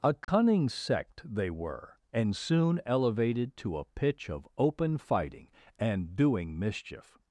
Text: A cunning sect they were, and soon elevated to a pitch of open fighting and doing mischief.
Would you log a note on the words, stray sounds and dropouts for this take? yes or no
yes